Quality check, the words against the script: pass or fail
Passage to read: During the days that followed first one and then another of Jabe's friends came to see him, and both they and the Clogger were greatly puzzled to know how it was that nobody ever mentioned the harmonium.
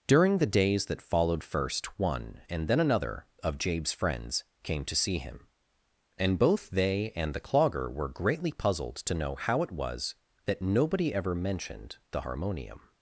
pass